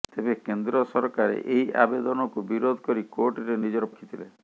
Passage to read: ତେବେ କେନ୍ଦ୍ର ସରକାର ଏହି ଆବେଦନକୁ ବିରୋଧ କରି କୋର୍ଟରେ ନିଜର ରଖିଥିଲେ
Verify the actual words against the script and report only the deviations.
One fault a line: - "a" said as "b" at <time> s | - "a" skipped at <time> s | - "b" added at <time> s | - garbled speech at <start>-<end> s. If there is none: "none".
none